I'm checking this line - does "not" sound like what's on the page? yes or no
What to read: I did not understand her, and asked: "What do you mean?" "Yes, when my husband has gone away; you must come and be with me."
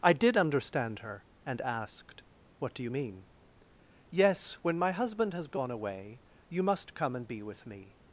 no